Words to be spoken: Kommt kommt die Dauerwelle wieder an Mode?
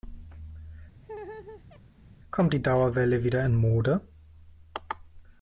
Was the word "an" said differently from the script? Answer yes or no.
yes